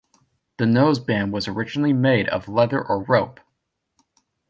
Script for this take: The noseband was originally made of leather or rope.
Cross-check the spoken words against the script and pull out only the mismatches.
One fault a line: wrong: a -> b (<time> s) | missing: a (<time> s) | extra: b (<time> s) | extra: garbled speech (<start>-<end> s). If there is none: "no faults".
no faults